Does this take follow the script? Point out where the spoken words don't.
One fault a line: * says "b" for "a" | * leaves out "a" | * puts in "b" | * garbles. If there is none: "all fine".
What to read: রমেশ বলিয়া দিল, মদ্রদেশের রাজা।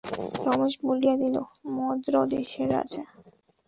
all fine